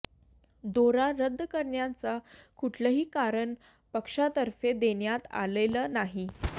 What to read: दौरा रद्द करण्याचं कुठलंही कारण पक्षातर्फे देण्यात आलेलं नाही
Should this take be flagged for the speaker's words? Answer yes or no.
no